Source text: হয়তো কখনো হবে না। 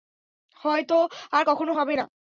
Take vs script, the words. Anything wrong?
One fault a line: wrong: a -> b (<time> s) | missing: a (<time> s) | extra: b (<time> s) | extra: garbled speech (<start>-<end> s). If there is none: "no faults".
extra: আর (1.3 s)